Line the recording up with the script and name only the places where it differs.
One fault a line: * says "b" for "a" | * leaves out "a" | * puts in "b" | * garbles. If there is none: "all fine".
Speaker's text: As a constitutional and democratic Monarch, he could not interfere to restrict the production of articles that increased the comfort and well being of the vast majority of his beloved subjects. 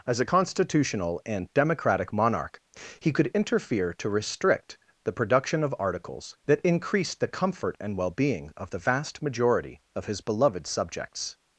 * leaves out "not"